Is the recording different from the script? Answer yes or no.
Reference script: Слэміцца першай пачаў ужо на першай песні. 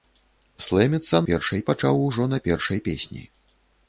no